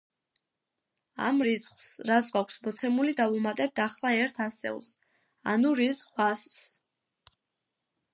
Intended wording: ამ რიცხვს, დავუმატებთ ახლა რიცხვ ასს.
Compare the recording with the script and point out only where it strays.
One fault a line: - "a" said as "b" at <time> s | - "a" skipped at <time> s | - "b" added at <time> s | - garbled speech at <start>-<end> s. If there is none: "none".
- "რაც გვაქვს მოცემული" added at 2.1 s
- "ერთ ასეულს ანუ" added at 4.2 s